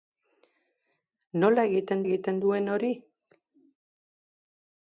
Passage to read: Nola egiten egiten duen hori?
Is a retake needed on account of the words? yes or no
no